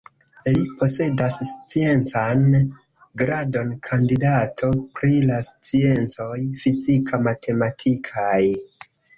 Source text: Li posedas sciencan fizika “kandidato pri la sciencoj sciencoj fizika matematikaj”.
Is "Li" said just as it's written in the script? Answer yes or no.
yes